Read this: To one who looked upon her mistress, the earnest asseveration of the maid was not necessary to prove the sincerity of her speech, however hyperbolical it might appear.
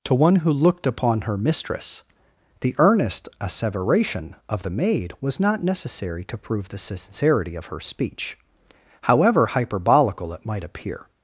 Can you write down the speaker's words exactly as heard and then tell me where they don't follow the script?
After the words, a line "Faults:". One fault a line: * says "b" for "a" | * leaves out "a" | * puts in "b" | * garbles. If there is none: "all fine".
To one who looked upon her mistress, the earnest asseveration of the maid was not necessary to prove the sincerity of her speech, however hyperbolical it might appear.
Faults:
all fine